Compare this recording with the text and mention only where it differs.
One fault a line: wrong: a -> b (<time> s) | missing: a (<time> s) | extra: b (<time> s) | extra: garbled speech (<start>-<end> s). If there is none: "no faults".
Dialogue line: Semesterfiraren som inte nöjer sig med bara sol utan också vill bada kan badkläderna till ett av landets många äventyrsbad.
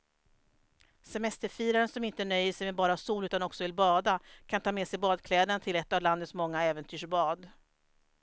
extra: ta med sig (4.6 s)